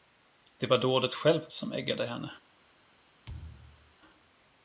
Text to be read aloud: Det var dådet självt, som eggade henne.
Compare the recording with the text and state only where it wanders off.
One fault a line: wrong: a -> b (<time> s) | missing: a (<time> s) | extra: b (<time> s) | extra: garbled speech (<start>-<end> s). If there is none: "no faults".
no faults